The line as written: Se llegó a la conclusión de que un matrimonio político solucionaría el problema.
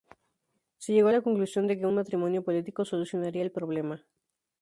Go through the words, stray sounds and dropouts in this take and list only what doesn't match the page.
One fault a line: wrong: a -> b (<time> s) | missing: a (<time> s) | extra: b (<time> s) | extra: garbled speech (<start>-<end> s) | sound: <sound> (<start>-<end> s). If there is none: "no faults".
no faults